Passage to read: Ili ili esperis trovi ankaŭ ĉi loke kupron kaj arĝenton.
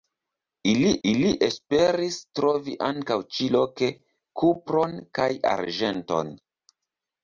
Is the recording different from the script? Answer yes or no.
no